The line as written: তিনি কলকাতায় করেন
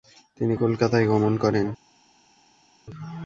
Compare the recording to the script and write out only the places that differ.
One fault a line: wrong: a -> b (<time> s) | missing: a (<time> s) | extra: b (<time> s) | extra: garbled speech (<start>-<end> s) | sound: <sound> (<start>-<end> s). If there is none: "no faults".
extra: গমন (1.1 s)